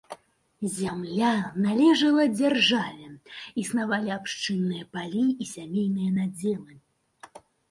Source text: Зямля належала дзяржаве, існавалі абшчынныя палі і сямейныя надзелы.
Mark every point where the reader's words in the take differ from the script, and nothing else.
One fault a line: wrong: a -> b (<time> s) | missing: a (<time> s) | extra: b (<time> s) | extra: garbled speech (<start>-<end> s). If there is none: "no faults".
no faults